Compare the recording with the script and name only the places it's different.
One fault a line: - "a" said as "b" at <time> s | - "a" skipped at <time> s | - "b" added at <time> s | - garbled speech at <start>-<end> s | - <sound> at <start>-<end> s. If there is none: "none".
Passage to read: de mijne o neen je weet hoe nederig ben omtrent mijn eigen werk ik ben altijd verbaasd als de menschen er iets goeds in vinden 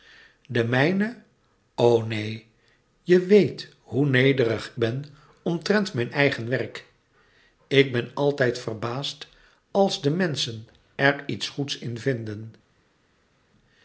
none